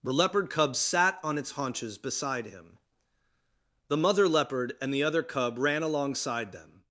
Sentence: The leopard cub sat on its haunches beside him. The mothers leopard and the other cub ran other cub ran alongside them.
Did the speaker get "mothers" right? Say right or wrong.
wrong